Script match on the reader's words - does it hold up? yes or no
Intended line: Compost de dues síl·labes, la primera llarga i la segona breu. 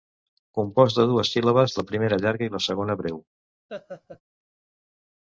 yes